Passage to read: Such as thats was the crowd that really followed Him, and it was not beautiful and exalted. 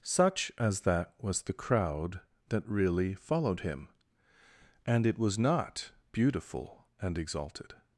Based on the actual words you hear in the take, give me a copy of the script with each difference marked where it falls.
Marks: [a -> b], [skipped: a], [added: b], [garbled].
Such as [thats -> that] was the crowd that really followed Him, and it was not beautiful and exalted.